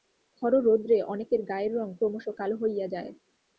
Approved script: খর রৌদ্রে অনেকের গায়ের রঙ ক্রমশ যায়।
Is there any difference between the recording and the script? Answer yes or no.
yes